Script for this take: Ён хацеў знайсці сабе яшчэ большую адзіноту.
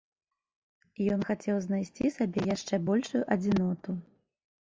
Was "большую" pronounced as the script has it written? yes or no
yes